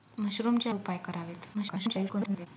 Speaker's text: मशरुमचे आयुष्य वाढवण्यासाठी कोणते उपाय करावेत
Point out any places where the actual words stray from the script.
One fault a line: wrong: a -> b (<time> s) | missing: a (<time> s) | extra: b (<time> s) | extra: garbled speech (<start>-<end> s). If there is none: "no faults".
missing: आयुष्य वाढवण्यासाठी कोणते (0.7 s)
extra: garbled speech (1.5-2.5 s)